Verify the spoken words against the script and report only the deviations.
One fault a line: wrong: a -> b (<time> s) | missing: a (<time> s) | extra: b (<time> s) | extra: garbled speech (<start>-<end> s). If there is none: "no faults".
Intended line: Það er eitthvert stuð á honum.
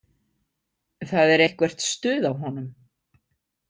no faults